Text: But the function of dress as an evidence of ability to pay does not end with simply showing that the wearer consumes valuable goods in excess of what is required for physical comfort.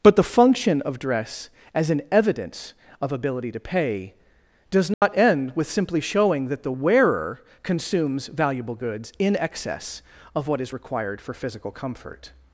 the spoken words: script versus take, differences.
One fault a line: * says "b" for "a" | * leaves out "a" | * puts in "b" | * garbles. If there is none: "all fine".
all fine